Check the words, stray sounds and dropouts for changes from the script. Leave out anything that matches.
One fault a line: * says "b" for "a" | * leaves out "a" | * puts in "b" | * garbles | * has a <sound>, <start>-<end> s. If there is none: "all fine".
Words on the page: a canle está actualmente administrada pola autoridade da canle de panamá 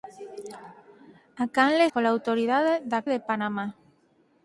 * leaves out "está actualmente administrada"
* leaves out "canle"